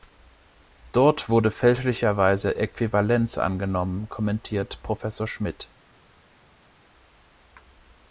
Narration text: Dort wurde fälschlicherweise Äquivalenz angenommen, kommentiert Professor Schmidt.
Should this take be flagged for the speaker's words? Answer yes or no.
no